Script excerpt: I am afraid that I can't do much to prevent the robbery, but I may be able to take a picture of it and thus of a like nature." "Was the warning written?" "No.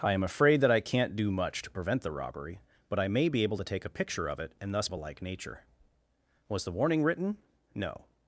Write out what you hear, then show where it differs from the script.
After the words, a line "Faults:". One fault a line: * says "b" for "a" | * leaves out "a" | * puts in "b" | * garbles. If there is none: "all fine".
I am afraid that I can't do much to prevent the robbery, but I may be able to take a picture of it and thus of a like nature." "Was the warning written?" "No.
Faults:
all fine